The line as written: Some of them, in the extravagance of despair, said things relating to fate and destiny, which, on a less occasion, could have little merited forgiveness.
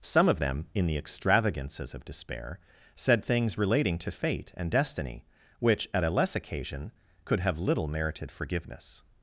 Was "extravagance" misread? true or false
true